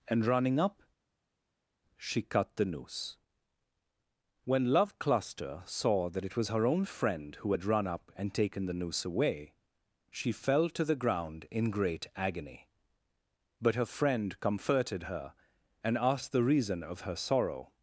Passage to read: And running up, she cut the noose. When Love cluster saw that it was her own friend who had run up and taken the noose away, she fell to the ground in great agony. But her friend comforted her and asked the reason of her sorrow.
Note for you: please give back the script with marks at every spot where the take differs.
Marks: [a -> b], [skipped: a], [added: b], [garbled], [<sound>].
And running up, she cut the noose. When Love cluster saw that it was her own friend who had run up and taken the noose away, she fell to the ground in great agony. But her friend comforted her and asked the reason of her sorrow.